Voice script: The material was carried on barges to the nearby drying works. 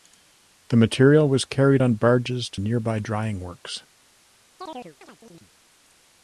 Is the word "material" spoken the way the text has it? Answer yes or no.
yes